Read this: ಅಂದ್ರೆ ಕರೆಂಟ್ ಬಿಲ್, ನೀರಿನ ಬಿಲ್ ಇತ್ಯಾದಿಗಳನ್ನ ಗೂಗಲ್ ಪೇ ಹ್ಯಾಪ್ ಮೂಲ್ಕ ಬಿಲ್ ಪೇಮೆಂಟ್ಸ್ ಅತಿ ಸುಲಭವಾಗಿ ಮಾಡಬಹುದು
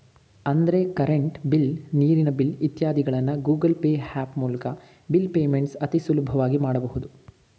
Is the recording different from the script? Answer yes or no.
no